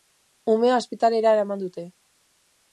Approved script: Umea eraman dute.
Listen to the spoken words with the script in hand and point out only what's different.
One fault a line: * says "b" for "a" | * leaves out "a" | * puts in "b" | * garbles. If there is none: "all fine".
* puts in "ospitalera"